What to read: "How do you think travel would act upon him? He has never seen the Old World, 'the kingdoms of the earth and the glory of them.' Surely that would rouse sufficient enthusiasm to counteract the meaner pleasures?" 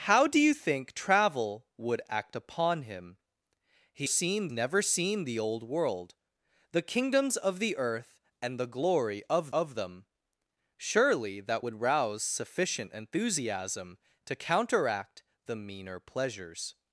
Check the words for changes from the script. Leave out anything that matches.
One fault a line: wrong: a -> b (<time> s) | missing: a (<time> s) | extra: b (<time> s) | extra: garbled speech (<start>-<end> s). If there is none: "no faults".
wrong: has -> seen (4.0 s)
extra: of (9.5 s)